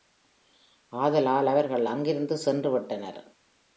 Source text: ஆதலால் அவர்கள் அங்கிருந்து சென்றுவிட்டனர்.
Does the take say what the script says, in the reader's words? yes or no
yes